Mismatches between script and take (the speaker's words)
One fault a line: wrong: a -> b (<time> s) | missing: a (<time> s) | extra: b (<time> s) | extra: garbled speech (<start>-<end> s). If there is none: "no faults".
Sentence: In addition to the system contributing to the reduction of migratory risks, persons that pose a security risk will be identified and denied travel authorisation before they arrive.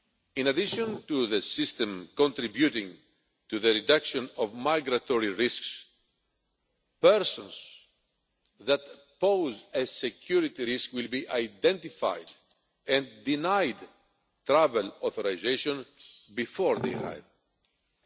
no faults